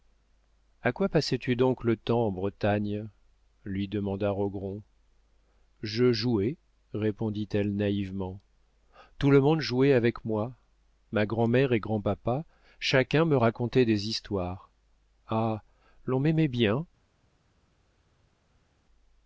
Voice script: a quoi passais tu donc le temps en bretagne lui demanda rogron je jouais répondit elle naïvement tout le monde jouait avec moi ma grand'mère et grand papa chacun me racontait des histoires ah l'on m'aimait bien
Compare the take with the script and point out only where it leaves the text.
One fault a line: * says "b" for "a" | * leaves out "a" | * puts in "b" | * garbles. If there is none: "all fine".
all fine